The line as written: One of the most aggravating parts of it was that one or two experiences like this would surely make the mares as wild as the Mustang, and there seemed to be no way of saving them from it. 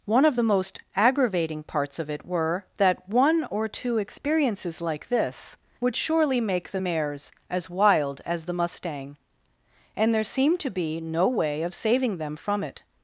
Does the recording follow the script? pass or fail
fail